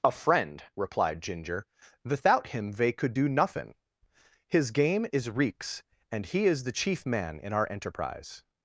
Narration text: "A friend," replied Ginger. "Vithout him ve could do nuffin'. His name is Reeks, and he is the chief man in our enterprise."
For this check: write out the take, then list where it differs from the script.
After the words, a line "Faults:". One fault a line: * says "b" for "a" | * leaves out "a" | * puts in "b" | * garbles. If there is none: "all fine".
"A friend," replied Ginger. "Vithout him ve could do nuffin'. His game is Reeks, and he is the chief man in our enterprise."
Faults:
* says "game" for "name"